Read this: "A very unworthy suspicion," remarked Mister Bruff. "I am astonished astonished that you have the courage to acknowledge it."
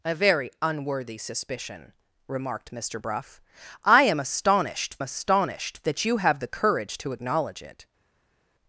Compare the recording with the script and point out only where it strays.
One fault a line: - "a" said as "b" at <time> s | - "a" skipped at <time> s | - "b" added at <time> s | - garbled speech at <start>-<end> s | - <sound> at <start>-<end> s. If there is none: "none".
none